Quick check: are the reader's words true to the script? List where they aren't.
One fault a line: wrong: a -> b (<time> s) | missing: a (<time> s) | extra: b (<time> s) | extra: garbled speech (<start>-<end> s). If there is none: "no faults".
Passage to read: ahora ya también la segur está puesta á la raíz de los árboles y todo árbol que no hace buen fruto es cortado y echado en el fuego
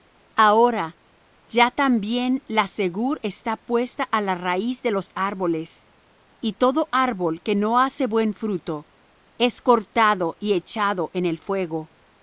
no faults